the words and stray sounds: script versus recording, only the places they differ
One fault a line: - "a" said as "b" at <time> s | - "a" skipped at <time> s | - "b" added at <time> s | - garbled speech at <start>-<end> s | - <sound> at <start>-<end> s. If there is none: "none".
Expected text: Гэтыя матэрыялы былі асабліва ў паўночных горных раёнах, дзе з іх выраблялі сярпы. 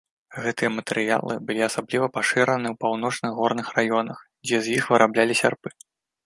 - "пашыраны" added at 2.2 s